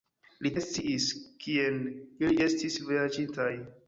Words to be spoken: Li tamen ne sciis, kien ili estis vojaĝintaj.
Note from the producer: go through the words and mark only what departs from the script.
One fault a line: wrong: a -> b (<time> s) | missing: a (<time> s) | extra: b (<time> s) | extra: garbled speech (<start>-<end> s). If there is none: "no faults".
missing: tamen (0.5 s)